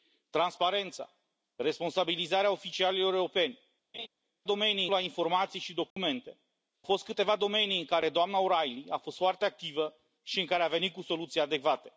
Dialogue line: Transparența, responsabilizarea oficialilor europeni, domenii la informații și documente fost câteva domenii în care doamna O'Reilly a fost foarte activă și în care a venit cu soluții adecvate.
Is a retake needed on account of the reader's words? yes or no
no